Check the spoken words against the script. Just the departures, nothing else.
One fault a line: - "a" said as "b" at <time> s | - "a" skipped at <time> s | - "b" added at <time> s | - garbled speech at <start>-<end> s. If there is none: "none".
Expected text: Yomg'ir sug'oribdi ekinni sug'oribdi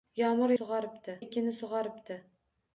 none